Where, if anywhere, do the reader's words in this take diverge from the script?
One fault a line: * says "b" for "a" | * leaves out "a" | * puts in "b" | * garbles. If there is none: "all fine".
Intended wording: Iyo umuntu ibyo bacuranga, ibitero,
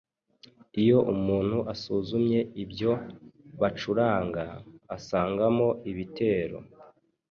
* puts in "asuzumye"
* puts in "asangamo"